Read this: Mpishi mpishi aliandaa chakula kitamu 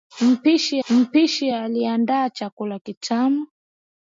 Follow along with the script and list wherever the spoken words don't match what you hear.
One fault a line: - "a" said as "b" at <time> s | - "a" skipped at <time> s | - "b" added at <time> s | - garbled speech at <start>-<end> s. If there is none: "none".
none